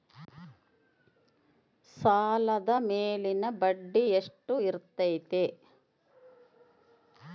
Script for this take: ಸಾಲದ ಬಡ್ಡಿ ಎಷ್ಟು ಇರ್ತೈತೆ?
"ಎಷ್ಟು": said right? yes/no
yes